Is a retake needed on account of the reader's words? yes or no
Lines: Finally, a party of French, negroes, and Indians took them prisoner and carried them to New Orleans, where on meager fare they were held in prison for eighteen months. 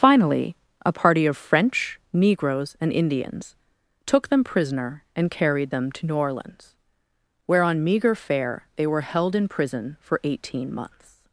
no